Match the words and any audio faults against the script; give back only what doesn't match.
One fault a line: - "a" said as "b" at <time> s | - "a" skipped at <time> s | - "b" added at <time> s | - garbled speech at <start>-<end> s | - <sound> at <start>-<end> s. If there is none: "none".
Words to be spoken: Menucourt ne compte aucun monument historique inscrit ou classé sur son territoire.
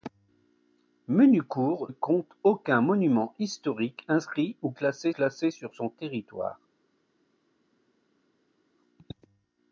- "ne" skipped at 1.9 s
- "classé" added at 5.1 s